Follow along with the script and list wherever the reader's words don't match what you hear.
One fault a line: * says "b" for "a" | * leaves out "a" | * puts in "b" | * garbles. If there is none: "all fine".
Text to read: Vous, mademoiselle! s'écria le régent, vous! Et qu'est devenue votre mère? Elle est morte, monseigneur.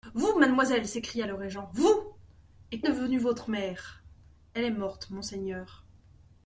* leaves out "qu'est"